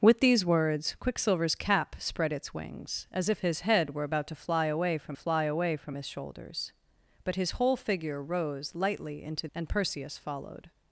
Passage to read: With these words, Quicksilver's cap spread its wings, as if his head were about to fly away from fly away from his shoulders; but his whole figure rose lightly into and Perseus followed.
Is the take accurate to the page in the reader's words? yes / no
yes